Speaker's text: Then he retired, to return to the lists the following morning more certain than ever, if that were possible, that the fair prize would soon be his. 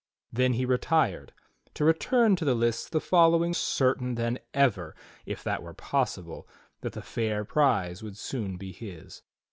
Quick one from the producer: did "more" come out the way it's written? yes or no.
no